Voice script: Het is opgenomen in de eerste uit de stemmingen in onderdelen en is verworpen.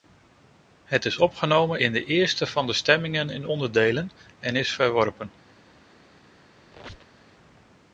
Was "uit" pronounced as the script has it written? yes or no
no